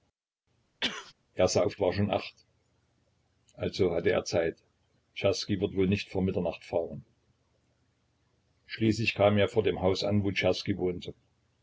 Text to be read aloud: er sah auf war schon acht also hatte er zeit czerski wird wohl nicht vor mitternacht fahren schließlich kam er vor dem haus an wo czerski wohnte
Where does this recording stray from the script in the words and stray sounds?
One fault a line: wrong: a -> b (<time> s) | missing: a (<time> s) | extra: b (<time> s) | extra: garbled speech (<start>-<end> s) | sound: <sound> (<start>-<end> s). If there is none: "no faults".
sound: sneeze (0.8-1.1 s)